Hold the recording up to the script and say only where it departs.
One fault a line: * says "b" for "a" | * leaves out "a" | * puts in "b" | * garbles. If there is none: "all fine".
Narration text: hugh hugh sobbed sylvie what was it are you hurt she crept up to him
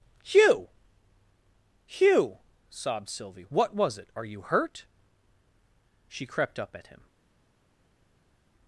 * says "at" for "to"